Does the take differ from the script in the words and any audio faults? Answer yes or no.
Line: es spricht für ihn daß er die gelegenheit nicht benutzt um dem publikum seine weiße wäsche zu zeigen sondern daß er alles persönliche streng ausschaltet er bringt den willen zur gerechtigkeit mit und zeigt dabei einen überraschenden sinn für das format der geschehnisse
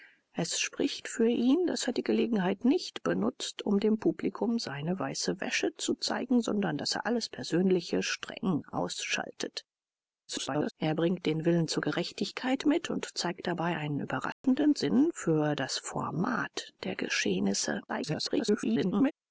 yes